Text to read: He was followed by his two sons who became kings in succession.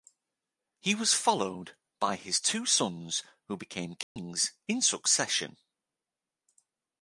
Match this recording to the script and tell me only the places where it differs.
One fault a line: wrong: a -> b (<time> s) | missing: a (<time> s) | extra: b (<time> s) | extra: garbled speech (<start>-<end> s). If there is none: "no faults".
no faults